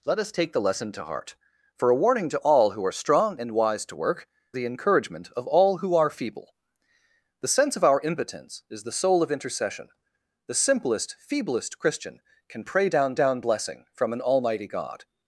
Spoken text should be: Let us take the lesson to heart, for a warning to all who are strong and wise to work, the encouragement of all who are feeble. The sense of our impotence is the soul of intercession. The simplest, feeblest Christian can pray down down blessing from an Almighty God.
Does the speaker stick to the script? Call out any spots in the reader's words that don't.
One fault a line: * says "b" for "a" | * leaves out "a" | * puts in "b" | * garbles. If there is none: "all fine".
all fine